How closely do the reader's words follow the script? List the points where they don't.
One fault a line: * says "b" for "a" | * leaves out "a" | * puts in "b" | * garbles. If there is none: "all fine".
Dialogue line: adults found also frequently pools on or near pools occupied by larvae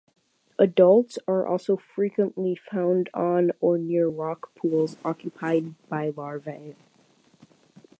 * says "are" for "found"
* says "found" for "pools"
* puts in "rock"